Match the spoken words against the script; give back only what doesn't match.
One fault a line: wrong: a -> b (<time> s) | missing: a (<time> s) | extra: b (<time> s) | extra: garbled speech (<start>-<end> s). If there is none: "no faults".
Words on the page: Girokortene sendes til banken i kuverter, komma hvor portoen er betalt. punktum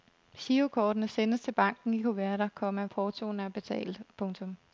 missing: hvor (2.8 s)